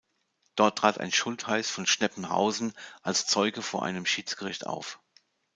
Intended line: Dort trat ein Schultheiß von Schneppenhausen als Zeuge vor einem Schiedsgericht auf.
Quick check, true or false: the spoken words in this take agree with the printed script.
true